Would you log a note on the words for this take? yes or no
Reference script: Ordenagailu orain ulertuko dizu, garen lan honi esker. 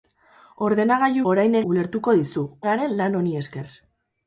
no